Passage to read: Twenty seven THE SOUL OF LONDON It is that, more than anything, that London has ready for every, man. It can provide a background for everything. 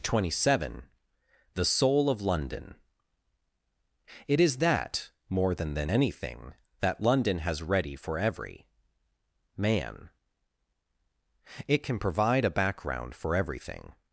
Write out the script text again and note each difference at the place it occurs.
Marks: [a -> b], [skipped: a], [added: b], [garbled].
Twenty seven THE SOUL OF LONDON It is that, more than [added: than] anything, that London has ready for every, man. It can provide a background for everything.